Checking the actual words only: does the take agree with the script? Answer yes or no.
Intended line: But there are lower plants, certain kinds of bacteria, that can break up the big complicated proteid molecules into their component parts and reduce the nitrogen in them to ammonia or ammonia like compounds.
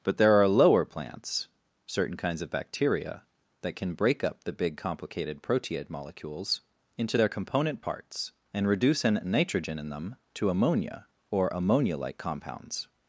no